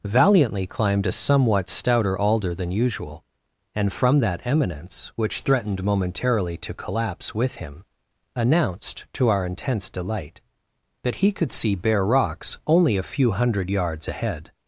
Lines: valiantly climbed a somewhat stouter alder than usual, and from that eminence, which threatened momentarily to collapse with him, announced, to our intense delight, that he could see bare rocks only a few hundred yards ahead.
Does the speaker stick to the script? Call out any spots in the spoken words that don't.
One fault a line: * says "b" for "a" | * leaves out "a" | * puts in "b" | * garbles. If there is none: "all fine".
all fine